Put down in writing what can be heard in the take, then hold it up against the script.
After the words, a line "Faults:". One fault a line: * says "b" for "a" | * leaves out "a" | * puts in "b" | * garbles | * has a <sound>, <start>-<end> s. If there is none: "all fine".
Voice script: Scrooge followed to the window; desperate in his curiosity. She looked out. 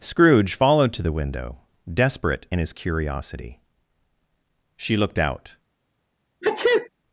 Scrooge followed to the window; desperate in his curiosity. She looked out.
Faults:
* has a sneeze, 6.4-6.9 s